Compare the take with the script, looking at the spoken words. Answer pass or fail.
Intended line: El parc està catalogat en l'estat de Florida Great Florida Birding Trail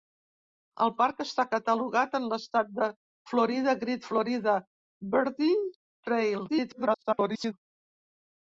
fail